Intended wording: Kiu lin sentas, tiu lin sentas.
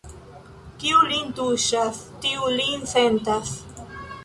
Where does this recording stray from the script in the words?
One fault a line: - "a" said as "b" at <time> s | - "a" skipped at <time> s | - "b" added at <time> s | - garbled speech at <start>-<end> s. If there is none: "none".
- "sentas" said as "tuŝas" at 1.4 s